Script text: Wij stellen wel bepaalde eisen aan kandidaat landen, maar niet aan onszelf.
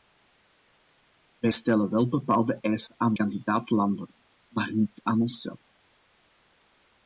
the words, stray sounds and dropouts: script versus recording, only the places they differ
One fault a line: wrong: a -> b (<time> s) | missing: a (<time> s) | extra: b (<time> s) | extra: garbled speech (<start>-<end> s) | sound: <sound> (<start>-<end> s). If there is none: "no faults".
no faults